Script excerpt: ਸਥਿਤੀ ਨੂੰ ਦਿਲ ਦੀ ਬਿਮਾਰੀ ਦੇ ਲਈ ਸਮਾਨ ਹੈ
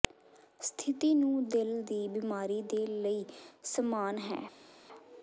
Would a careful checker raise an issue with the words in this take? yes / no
no